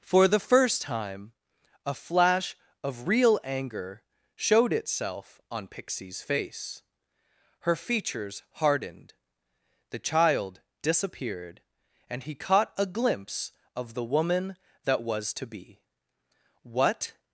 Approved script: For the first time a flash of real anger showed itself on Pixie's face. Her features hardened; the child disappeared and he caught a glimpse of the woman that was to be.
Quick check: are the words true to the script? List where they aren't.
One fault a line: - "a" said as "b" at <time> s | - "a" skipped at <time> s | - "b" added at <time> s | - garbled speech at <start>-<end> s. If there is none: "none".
- "What" added at 16.6 s